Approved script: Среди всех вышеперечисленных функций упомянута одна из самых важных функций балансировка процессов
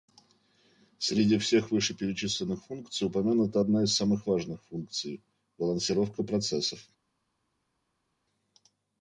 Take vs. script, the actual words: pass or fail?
pass